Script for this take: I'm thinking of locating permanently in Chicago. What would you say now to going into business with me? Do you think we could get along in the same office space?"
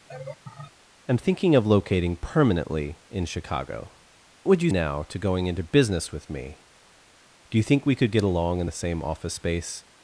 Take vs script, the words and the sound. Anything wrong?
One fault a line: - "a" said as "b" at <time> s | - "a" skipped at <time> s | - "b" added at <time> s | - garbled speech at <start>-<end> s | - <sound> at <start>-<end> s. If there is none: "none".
- laugh at 0.1-0.7 s
- "What" skipped at 3.9 s
- "say" skipped at 4.7 s